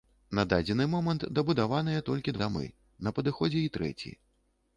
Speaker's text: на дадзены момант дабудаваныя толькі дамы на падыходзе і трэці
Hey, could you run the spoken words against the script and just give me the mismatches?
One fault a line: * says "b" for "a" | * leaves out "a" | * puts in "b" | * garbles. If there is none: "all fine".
all fine